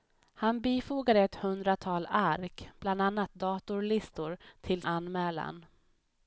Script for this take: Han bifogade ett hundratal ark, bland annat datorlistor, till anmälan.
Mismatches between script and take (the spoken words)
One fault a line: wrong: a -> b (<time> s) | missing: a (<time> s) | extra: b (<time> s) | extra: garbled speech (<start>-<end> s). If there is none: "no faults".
no faults